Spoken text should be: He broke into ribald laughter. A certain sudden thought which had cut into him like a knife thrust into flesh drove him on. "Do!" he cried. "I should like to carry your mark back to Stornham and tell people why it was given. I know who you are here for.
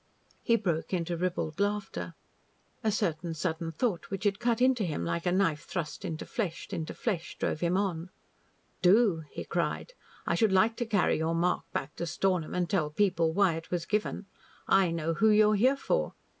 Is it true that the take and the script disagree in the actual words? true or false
true